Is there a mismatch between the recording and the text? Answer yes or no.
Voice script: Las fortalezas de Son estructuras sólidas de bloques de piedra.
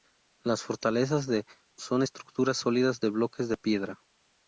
no